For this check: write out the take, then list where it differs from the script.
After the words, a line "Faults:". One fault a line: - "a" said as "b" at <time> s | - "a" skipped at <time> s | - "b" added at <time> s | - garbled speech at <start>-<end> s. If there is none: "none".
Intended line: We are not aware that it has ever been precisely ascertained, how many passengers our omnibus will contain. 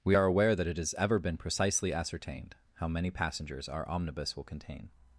We are aware that it has ever been precisely ascertained, how many passengers our omnibus will contain.
Faults:
- "not" skipped at 0.2 s